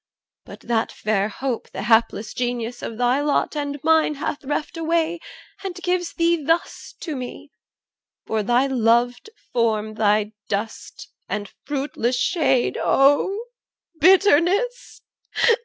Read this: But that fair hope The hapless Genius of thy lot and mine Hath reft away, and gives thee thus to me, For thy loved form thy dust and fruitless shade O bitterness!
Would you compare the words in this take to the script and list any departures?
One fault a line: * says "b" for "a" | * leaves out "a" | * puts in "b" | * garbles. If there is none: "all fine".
all fine